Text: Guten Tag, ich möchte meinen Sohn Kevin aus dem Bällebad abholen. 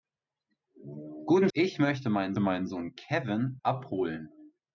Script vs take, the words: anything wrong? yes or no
yes